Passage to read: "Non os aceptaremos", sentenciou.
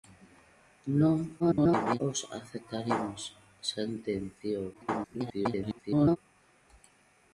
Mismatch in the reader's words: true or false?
true